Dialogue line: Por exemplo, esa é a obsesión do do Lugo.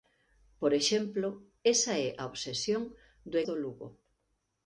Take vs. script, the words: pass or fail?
pass